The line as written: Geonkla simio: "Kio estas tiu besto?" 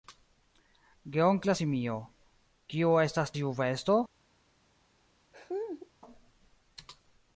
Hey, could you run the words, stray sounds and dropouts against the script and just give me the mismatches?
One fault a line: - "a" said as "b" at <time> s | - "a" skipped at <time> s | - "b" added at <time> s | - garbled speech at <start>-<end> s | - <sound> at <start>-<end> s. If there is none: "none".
- laugh at 5.3-5.9 s